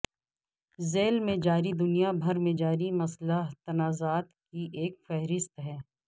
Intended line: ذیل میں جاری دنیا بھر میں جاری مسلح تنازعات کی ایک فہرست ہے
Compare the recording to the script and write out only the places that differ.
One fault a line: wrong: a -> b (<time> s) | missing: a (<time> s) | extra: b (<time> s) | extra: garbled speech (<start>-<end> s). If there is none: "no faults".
no faults